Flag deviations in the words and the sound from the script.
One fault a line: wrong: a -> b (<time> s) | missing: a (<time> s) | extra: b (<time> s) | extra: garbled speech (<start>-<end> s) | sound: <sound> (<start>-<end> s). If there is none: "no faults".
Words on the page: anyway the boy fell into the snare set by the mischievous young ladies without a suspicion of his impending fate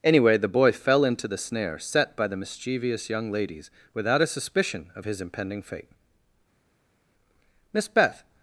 extra: miss beth (7.7 s)